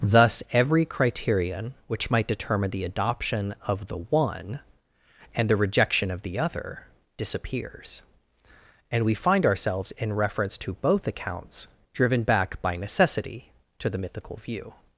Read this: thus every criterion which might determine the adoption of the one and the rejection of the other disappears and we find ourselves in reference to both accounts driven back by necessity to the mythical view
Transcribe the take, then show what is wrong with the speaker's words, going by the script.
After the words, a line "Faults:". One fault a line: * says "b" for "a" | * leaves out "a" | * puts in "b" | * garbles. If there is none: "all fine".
thus every criterion which might determine the adoption of the one and the rejection of the other disappears and we find ourselves in reference to both accounts driven back by necessity to the mythical view
Faults:
all fine